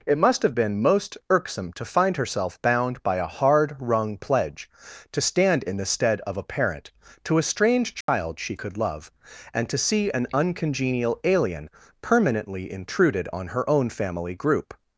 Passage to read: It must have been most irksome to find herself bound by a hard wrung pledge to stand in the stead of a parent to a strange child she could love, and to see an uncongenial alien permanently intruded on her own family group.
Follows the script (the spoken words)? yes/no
yes